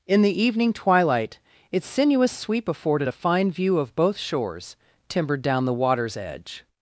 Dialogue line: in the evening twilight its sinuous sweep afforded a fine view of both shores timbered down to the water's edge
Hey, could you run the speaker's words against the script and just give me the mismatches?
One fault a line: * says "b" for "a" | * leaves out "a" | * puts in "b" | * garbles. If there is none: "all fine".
* leaves out "to"